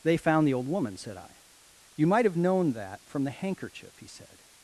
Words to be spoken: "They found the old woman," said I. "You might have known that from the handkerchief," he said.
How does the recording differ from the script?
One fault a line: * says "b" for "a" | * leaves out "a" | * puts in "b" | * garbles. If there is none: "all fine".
all fine